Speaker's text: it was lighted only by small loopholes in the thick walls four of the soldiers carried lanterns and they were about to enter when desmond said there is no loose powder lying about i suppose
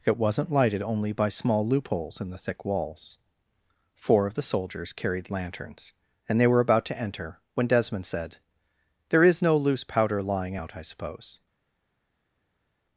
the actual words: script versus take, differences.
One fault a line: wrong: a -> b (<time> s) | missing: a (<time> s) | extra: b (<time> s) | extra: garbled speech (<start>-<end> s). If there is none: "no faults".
wrong: was -> wasn't (0.2 s)
wrong: about -> out (10.5 s)